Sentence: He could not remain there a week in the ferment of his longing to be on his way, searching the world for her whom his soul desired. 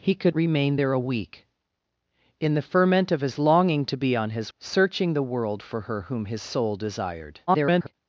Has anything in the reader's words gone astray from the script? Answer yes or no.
yes